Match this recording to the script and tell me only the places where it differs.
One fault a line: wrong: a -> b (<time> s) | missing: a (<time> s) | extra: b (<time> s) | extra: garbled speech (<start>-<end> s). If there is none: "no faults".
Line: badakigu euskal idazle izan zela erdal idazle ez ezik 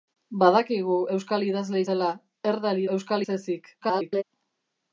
missing: izan (1.8 s)
wrong: idazle -> euskal (2.9 s)
extra: garbled speech (3.8-4.2 s)